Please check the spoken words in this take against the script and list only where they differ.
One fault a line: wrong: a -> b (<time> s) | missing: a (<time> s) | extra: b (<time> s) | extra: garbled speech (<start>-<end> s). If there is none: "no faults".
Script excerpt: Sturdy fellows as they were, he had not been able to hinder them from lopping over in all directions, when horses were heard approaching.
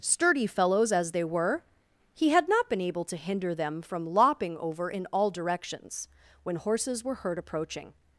no faults